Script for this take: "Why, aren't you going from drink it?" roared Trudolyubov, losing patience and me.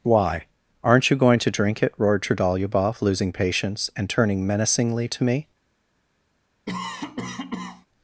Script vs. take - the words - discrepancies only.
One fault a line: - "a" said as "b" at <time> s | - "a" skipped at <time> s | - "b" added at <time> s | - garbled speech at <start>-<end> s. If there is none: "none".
- "from" said as "to" at 1.4 s
- "turning menacingly to" added at 4.1 s